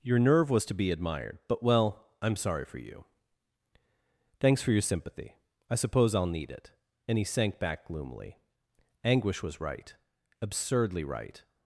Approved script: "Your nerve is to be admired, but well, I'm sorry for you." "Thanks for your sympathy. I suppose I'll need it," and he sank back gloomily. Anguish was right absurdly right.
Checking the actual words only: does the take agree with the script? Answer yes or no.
no